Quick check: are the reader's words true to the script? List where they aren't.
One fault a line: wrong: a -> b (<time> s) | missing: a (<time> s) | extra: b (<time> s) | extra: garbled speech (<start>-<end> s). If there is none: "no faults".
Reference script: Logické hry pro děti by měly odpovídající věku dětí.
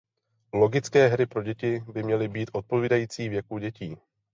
extra: být (2.3 s)